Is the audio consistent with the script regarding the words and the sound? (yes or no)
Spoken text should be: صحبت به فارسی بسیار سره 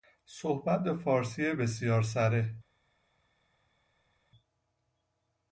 yes